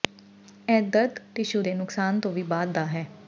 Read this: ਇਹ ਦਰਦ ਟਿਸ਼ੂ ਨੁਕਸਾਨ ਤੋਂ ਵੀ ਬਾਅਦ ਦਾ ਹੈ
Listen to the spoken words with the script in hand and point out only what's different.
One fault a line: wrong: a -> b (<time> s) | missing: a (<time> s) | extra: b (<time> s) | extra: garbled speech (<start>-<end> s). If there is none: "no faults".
extra: ਦੇ (1.6 s)